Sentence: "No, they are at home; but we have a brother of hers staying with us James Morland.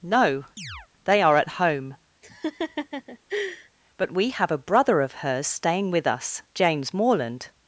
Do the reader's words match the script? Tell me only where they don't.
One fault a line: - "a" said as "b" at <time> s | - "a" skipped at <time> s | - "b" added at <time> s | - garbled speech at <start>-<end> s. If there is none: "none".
none